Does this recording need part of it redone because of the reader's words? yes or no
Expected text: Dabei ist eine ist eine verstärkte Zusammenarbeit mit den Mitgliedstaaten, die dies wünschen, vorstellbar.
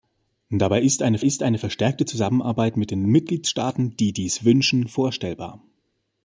no